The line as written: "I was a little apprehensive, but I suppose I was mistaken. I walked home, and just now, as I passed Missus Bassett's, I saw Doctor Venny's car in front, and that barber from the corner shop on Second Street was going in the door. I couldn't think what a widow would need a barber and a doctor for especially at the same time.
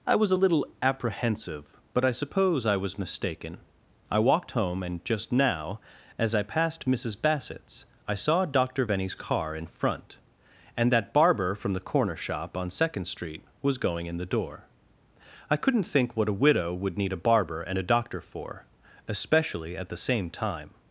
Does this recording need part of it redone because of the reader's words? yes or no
no